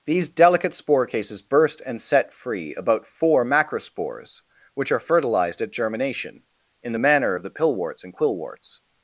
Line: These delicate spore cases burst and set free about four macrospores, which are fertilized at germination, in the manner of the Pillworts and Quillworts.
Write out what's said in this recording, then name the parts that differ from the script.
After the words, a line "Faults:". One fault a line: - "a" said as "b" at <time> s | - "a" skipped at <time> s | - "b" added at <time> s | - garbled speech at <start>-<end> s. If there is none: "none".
These delicate spore cases burst and set free about four macrospores, which are fertilized at germination, in the manner of the Pillworts and Quillworts.
Faults:
none